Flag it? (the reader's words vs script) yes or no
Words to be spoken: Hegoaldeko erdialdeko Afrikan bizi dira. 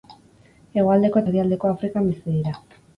no